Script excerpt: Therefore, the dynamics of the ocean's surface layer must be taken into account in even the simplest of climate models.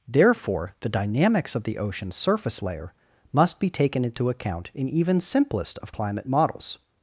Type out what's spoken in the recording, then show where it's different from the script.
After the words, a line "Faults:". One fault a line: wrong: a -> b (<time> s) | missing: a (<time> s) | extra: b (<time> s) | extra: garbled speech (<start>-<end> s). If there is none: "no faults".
Therefore, the dynamics of the ocean's surface layer must be taken into account in even simplest of climate models.
Faults:
missing: the (5.2 s)